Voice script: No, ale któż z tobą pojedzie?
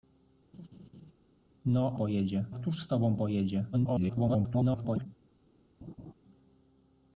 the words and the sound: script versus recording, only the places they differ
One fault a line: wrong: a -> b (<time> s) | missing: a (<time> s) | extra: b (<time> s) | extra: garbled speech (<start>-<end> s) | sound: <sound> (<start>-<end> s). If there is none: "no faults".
sound: laugh (0.5-1.1 s)
wrong: ale -> pojedzie (1.9 s)
extra: garbled speech (3.7-5.1 s)
sound: laugh (5.8-6.1 s)